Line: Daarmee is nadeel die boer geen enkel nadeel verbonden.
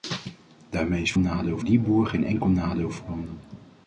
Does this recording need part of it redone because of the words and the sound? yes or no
no